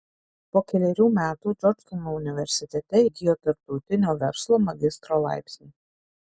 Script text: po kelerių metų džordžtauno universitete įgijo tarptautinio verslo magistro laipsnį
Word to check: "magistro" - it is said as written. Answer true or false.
true